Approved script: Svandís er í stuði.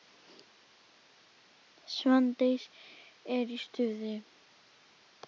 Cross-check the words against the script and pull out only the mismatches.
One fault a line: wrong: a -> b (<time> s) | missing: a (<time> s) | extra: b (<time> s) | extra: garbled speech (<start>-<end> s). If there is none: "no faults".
no faults